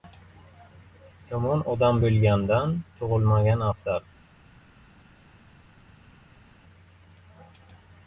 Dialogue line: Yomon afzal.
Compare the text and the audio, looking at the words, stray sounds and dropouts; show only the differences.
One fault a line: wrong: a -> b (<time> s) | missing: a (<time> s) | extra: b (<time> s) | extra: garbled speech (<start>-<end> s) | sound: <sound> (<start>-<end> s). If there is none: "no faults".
extra: odam bo‘lgandan tug‘ilmagan (1.8 s)